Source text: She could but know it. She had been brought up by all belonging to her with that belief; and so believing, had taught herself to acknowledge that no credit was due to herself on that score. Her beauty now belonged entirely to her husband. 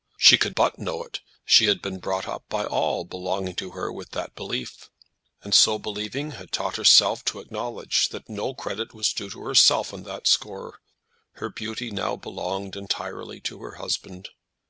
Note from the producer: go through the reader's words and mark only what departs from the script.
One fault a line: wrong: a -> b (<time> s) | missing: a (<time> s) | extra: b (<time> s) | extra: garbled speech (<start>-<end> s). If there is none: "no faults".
no faults